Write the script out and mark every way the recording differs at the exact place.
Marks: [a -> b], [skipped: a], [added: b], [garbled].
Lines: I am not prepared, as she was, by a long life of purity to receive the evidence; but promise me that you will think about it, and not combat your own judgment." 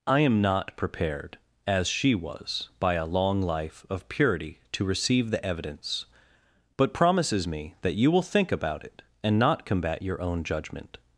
I am not prepared, as she was, by a long life of purity to receive the evidence; but [promise -> promises] me that you will think about it, and not combat your own judgment."